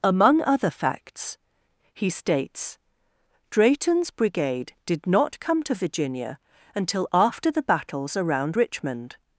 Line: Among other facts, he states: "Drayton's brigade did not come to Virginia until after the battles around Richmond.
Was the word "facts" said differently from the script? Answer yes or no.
no